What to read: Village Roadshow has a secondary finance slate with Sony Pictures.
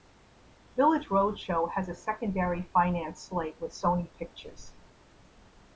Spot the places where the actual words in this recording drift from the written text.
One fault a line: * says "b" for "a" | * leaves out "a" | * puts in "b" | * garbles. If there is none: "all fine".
all fine